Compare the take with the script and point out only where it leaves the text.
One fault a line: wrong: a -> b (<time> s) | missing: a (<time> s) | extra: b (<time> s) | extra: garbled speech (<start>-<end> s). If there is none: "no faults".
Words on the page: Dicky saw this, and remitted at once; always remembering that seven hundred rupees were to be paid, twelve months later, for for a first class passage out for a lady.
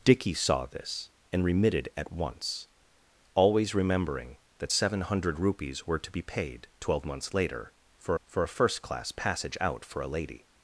no faults